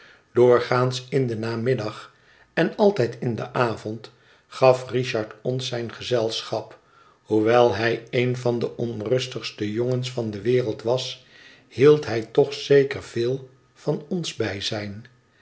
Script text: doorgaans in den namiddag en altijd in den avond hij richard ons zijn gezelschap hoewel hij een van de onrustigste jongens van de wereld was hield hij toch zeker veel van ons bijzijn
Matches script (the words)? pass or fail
fail